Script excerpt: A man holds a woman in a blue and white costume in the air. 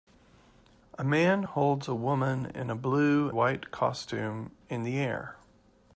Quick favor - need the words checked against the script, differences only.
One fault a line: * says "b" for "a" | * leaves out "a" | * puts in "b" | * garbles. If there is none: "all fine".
* leaves out "and"